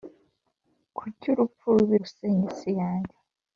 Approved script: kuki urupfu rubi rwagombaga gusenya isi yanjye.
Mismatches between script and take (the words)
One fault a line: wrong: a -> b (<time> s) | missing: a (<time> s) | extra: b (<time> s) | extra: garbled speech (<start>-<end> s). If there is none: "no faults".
missing: rwagombaga (1.9 s)